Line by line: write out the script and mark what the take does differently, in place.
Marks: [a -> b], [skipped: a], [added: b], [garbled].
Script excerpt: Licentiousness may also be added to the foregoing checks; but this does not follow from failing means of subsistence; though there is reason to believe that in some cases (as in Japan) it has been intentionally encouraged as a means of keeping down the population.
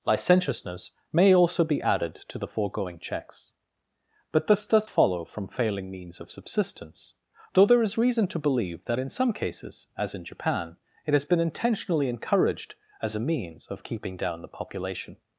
Licentiousness may also be added to the foregoing checks; but this does [skipped: not] follow from failing means of subsistence; though there is reason to believe that in some cases (as in Japan) it has been intentionally encouraged as a means of keeping down the population.